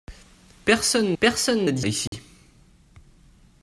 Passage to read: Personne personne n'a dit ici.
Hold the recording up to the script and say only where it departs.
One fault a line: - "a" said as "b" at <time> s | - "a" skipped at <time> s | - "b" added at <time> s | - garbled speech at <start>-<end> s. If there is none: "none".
none